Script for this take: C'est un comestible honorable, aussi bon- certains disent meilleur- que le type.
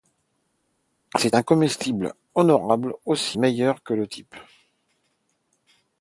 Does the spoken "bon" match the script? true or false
false